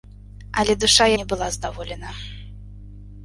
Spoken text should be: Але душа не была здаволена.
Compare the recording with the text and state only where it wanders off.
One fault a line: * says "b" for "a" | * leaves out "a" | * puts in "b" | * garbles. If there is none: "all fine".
all fine